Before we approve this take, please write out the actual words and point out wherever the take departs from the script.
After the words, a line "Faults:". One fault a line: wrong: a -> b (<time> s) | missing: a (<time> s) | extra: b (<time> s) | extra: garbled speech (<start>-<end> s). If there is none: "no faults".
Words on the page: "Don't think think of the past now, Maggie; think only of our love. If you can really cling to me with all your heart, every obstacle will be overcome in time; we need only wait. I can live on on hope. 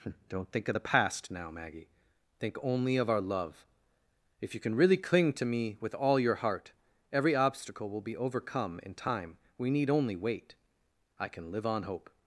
"Don't think of the past now, Maggie; think only of our love. If you can really cling to me with all your heart, every obstacle will be overcome in time; we need only wait. I can live on hope.
Faults:
missing: think (0.7 s)
missing: on (11.8 s)